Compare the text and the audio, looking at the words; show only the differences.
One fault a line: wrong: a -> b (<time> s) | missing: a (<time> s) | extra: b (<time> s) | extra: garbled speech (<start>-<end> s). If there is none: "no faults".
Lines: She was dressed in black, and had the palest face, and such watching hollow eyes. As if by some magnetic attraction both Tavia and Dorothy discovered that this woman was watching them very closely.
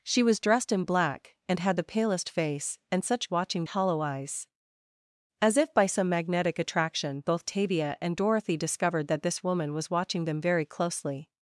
no faults